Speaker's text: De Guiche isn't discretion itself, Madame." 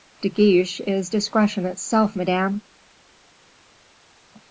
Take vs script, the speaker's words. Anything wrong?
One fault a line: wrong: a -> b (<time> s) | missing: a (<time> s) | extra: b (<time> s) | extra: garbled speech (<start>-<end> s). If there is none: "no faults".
wrong: isn't -> is (0.9 s)